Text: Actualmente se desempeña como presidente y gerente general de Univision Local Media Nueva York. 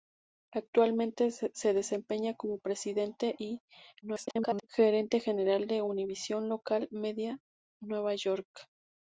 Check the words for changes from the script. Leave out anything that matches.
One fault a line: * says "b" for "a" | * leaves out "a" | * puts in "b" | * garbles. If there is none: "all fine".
* garbles